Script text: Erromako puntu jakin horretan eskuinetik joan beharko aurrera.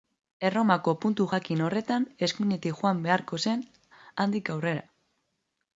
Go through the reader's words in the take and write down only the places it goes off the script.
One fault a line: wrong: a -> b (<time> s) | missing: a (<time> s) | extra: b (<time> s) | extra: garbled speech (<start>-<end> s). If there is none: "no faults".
extra: zen handik (3.5 s)